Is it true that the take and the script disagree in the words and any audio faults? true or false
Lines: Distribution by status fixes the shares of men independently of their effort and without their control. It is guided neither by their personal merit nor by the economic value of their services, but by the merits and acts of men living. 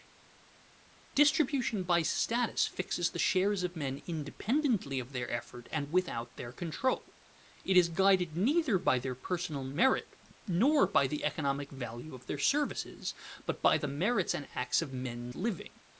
false